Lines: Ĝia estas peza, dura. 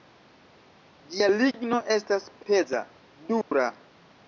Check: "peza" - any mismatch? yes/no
no